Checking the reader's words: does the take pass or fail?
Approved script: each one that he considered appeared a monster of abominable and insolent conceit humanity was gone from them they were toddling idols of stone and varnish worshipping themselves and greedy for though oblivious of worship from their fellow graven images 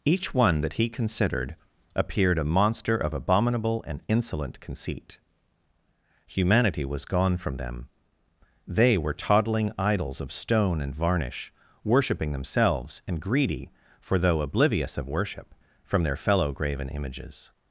pass